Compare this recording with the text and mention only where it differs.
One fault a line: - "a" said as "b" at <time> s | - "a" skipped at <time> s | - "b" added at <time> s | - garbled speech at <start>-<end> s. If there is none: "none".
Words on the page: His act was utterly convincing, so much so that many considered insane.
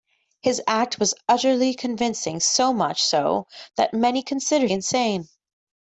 none